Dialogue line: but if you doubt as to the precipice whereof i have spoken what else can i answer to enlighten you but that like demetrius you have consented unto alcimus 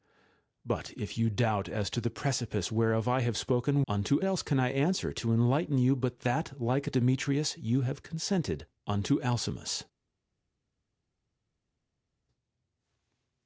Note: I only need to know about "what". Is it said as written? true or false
false